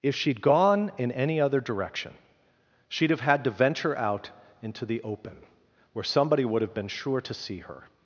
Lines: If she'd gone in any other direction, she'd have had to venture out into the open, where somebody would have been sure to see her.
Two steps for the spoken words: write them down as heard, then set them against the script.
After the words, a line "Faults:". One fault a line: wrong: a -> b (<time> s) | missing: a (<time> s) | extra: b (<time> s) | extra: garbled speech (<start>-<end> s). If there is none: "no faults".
If she'd gone in any other direction, she'd have had to venture out into the open, where somebody would have been sure to see her.
Faults:
no faults